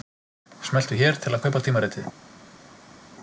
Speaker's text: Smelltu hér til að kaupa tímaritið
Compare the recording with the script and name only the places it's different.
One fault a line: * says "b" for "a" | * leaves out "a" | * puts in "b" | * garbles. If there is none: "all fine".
all fine